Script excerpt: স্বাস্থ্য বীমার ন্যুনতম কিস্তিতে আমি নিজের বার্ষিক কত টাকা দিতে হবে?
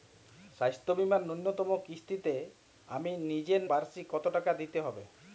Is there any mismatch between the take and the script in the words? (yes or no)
no